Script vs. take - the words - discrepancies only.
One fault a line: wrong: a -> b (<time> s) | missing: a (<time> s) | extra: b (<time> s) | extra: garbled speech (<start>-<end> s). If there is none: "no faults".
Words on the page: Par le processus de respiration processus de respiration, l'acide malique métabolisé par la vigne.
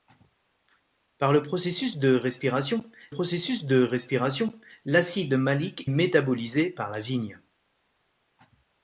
no faults